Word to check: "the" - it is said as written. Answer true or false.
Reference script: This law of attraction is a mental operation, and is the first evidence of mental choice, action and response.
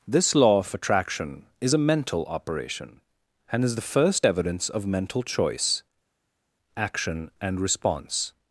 true